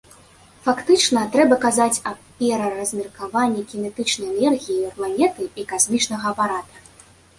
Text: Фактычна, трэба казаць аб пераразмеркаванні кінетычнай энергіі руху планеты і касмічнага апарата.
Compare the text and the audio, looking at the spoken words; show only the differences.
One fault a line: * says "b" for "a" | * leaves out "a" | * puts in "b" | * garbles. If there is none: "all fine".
* leaves out "руху"